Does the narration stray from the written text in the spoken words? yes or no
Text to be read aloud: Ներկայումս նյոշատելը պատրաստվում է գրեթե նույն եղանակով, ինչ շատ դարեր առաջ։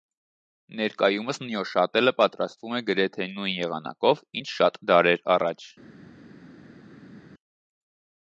no